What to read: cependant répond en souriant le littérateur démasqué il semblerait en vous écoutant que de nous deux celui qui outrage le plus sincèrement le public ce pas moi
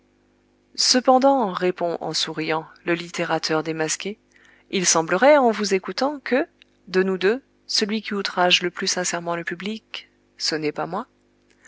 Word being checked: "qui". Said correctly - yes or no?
yes